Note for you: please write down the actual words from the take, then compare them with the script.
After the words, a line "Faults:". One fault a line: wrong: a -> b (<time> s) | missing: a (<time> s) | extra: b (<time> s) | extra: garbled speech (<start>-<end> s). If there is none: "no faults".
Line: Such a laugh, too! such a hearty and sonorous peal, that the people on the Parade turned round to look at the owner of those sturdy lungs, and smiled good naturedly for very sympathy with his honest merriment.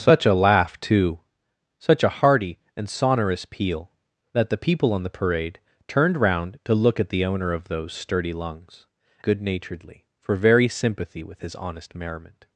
Such a laugh, too! such a hearty and sonorous peal, that the people on the Parade turned round to look at the owner of those sturdy lungs, good naturedly for very sympathy with his honest merriment.
Faults:
missing: and smiled (8.9 s)